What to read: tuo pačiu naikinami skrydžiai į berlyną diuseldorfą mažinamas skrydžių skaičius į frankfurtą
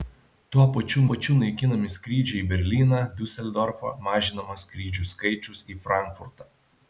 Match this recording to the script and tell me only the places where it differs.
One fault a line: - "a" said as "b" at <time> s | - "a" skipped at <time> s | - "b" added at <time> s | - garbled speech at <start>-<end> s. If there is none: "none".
- "pačiu" added at 1.1 s